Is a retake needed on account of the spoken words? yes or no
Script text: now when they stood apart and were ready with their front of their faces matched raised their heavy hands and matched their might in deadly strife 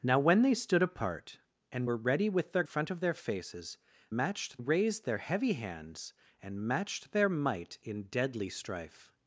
no